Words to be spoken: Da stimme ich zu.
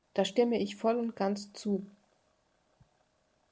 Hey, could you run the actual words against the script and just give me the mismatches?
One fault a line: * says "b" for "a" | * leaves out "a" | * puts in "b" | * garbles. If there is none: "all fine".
* puts in "voll und ganz"